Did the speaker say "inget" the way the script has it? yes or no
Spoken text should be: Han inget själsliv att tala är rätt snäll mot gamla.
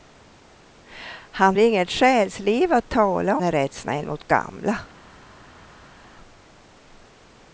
yes